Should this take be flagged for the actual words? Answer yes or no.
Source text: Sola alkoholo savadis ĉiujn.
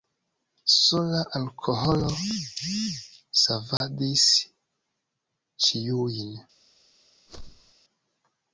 no